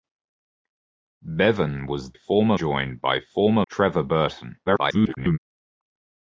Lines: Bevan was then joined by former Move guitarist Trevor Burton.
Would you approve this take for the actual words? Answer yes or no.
no